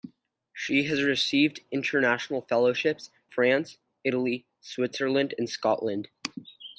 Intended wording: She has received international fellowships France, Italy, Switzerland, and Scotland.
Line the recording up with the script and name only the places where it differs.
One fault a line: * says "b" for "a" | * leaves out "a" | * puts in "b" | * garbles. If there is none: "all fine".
all fine